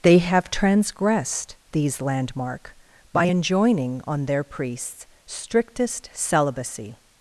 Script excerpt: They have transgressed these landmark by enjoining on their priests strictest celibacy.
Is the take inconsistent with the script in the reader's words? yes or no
no